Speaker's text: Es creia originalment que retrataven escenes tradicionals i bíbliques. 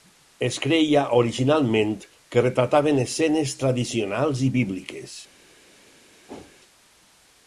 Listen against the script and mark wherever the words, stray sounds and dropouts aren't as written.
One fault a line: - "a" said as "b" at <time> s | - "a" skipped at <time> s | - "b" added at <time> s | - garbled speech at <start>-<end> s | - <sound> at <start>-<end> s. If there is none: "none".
- whoosh at 6.3-6.6 s